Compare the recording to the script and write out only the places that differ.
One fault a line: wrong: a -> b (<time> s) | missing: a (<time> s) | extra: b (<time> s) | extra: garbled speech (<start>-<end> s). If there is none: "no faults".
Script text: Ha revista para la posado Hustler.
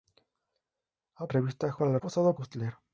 no faults